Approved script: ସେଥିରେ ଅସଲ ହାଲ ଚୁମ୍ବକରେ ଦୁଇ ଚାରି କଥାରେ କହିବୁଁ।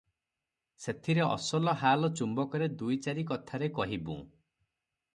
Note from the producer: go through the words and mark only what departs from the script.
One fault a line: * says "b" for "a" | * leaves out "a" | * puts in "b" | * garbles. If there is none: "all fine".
all fine